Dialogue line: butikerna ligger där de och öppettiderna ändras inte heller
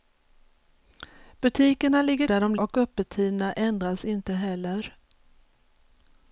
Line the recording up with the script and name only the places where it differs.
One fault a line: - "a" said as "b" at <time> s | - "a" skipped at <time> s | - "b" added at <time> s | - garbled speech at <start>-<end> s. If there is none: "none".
none